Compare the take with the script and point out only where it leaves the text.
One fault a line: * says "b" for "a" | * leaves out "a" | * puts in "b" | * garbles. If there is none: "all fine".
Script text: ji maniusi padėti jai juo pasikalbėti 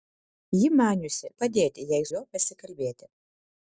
all fine